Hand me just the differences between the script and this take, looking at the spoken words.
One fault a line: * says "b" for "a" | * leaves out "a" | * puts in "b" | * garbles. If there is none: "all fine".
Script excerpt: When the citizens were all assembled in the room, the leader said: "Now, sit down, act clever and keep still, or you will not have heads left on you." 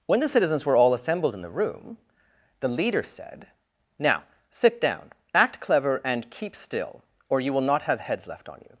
all fine